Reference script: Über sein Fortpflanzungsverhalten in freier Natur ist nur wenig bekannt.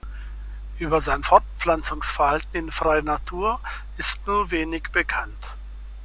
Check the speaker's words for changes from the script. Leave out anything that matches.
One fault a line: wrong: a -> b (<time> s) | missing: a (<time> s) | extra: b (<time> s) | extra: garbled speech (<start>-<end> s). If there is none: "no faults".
no faults